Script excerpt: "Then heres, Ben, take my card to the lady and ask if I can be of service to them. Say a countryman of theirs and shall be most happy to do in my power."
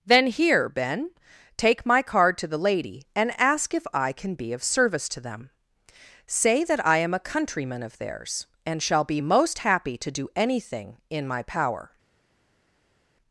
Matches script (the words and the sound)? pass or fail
fail